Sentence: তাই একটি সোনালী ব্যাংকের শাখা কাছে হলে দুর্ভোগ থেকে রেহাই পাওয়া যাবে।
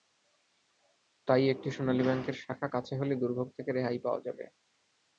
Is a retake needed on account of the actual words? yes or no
no